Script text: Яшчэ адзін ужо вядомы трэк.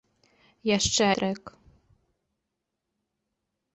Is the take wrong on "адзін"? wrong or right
wrong